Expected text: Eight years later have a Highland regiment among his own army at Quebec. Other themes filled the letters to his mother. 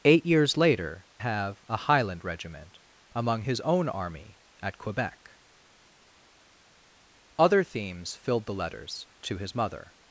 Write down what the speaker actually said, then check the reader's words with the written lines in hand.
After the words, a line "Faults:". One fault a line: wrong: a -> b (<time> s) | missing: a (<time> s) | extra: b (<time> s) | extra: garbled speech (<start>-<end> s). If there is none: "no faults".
Eight years later have a Highland regiment among his own army at Quebec. Other themes filled the letters to his mother.
Faults:
no faults